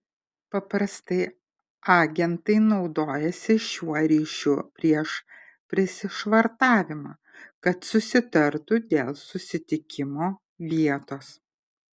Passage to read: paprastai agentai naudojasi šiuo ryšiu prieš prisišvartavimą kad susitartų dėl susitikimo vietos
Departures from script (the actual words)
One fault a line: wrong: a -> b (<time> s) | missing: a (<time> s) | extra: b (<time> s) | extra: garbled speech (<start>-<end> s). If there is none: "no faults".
no faults